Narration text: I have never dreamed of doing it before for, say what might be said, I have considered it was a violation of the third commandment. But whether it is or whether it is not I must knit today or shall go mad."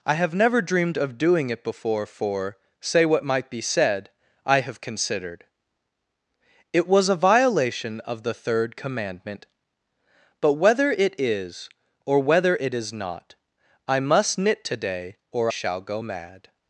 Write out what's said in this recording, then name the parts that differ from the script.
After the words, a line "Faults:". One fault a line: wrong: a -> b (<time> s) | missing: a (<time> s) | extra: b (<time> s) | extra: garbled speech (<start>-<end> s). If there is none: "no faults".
I have never dreamed of doing it before for, say what might be said, I have considered it was a violation of the third commandment. But whether it is or whether it is not I must knit today or shall go mad."
Faults:
no faults